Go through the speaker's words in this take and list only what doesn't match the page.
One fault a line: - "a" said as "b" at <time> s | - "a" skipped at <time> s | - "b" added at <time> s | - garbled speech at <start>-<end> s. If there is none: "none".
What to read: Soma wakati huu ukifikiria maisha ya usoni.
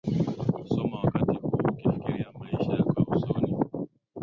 - "yako" added at 2.7 s